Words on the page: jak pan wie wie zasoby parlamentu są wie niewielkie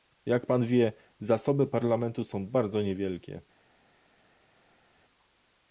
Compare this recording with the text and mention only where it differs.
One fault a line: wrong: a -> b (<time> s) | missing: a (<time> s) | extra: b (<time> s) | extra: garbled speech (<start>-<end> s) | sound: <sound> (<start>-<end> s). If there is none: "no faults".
missing: wie (0.9 s)
wrong: wie -> bardzo (2.5 s)